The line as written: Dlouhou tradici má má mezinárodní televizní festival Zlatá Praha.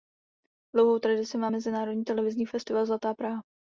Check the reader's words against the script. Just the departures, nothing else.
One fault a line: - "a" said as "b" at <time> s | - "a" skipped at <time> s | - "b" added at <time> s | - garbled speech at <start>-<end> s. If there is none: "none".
- "má" skipped at 1.5 s